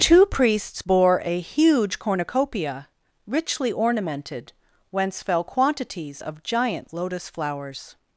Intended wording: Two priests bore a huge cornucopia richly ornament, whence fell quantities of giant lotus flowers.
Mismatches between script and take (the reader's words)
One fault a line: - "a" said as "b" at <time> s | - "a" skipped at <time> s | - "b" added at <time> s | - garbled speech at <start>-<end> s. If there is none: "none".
- "ornament" said as "ornamented" at 3.7 s